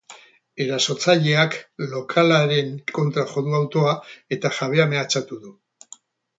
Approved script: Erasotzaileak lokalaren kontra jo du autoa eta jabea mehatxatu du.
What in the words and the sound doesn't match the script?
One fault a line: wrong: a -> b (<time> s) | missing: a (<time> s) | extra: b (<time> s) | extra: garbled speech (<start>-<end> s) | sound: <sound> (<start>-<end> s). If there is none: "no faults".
no faults